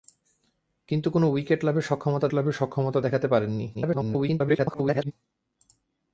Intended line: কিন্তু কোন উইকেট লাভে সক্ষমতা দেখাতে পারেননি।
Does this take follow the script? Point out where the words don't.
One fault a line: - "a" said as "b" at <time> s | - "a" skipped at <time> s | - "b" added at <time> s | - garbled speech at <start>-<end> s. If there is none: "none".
- "লাভে সক্ষমতা" added at 2.3 s
- garbled speech at 3.7-5.1 s